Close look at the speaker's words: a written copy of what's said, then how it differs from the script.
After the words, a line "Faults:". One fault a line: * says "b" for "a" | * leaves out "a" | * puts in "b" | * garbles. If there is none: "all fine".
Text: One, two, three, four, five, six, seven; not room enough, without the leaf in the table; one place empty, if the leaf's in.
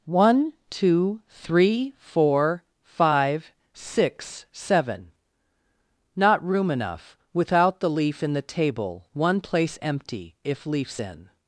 One, two, three, four, five, six, seven; not room enough, without the leaf in the table; one place empty, if leaf's in.
Faults:
* leaves out "the"